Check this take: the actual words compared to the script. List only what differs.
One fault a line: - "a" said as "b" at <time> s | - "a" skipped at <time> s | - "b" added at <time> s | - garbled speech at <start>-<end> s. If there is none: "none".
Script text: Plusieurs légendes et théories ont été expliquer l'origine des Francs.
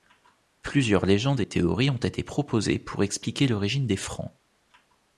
- "proposées pour" added at 2.2 s